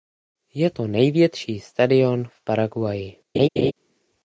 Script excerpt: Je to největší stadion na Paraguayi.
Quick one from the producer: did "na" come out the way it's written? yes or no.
no